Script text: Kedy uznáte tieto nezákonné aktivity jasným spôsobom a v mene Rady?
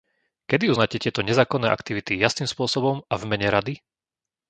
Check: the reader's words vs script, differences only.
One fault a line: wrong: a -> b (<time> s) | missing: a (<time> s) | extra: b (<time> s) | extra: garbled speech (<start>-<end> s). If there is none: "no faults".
no faults